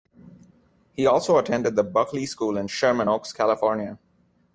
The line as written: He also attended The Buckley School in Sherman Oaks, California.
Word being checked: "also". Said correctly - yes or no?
yes